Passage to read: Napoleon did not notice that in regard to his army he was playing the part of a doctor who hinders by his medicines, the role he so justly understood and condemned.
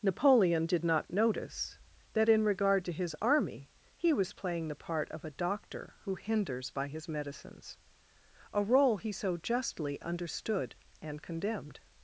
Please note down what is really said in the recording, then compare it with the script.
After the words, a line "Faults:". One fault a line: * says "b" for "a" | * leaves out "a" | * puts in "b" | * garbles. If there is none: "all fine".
Napoleon did not notice that in regard to his army he was playing the part of a doctor who hinders by his medicines, a role he so justly understood and condemned.
Faults:
* says "a" for "the"